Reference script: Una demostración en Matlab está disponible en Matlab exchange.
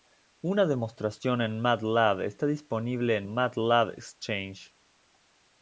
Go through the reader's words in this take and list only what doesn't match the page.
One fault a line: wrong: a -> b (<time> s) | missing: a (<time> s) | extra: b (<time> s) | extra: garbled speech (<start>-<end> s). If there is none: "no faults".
no faults